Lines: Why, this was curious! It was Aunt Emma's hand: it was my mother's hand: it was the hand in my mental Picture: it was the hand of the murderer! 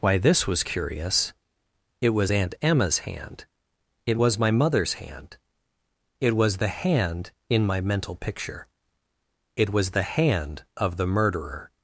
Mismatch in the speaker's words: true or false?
false